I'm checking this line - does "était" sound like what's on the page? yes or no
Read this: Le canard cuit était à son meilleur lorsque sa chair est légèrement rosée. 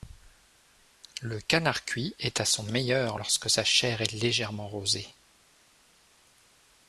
no